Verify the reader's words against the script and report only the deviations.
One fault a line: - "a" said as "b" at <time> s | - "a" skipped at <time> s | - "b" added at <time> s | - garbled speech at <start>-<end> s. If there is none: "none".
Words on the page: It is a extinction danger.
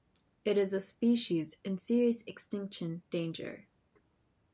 - "species in serious" added at 0.8 s